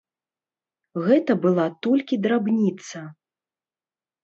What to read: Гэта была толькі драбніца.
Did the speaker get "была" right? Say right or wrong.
right